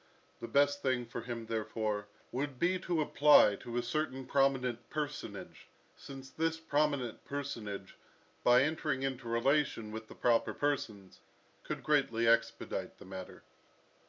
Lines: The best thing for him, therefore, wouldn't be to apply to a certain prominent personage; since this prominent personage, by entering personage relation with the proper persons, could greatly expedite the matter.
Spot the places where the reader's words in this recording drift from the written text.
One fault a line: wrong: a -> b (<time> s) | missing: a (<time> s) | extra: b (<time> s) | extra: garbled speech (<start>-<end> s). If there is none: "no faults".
wrong: wouldn't -> would (2.3 s)
wrong: personage -> into (9.0 s)